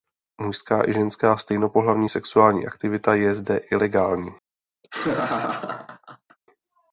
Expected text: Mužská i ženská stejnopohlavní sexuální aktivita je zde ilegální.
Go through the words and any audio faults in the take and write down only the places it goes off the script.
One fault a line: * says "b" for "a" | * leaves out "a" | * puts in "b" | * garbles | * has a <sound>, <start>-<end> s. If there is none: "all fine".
* has a laugh, 4.8-6.4 s